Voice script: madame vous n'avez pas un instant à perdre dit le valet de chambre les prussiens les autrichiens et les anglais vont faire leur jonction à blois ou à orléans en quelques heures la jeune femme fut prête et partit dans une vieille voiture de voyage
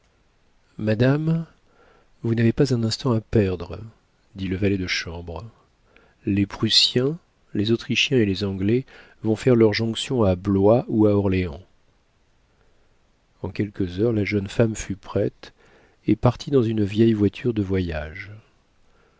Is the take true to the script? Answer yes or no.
yes